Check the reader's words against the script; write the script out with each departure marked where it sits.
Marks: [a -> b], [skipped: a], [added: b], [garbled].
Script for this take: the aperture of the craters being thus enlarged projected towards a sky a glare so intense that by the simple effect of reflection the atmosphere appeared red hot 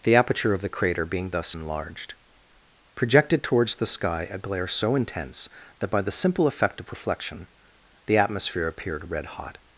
the aperture of the [craters -> crater] being thus enlarged projected towards [a -> the] sky a glare so intense that by the simple effect of reflection the atmosphere appeared red hot